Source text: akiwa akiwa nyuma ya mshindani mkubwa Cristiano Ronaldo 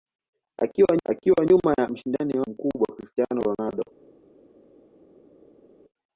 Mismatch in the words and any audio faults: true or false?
false